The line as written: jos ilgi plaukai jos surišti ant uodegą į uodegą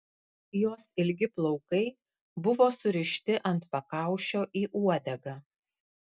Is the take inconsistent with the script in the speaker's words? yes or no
yes